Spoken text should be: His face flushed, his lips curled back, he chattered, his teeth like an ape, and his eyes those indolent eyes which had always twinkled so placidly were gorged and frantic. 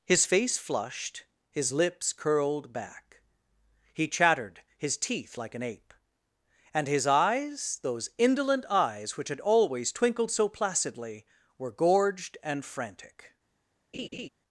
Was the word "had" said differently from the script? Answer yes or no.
no